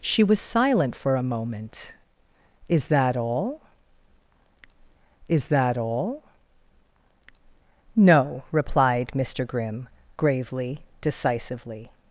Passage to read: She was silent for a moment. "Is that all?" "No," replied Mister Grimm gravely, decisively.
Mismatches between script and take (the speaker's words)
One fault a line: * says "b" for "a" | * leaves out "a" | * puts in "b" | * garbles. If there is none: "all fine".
* puts in "is that all"